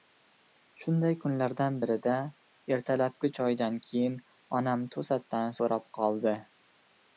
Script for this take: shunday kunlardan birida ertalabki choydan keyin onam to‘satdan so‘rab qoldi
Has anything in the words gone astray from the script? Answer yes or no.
no